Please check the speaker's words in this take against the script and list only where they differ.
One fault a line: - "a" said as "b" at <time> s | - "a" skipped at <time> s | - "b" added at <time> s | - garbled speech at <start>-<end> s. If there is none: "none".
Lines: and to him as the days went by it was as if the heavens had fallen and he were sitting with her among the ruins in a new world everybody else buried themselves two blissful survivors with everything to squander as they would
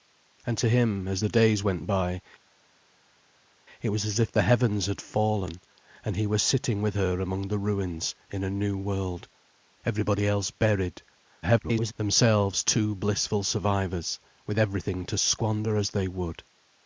- garbled speech at 11.4-11.9 s